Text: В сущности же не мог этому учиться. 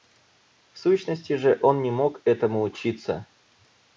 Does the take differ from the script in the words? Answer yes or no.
yes